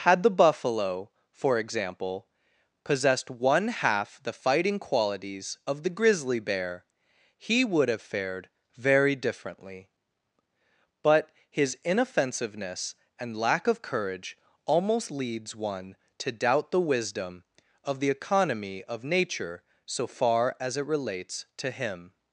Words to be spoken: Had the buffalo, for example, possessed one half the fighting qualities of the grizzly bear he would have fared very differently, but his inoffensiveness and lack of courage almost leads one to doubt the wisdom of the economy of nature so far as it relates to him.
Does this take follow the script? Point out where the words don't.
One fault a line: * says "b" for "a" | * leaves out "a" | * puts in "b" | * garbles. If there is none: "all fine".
all fine